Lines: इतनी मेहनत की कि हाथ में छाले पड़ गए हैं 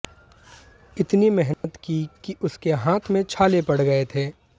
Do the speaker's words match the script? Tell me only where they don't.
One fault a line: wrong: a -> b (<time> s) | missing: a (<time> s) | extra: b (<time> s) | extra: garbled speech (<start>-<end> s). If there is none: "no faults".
extra: उसके (2.4 s)
wrong: हैं -> थे (4.2 s)